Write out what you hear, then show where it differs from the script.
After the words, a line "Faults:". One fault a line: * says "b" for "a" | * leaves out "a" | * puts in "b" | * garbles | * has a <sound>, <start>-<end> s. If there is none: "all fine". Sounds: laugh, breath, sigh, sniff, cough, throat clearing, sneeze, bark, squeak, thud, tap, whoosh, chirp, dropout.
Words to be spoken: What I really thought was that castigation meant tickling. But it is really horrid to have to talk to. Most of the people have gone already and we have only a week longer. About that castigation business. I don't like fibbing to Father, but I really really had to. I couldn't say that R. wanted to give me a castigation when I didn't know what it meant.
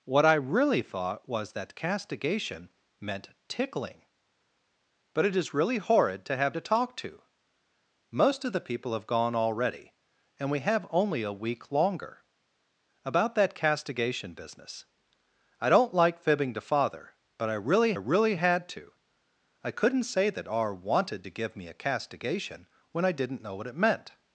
What I really thought was that castigation meant tickling. But it is really horrid to have to talk to. Most of the people have gone already and we have only a week longer. About that castigation business. I don't like fibbing to Father, but I really really had to. I couldn't say that R. wanted to give me a castigation when I didn't know what it meant.
Faults:
all fine